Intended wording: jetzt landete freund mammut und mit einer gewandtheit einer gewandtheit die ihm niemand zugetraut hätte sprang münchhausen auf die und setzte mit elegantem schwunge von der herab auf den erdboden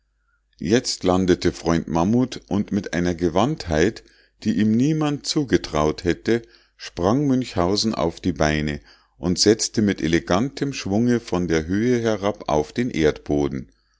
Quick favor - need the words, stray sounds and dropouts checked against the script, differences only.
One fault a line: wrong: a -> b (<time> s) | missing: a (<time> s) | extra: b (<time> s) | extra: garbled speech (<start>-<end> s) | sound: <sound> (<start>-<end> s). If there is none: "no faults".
missing: einer gewandtheit (4.0 s)
extra: beine (8.3 s)
extra: höhe (11.7 s)